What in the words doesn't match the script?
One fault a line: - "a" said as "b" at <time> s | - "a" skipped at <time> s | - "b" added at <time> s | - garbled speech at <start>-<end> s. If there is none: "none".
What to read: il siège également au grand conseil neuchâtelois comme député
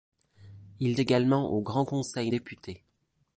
- "siège" skipped at 1.0 s
- "neuchâtelois comme" skipped at 2.3 s